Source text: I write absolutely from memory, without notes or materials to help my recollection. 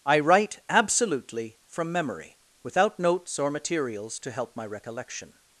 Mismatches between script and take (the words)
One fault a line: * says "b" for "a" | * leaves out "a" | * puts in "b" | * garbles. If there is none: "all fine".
all fine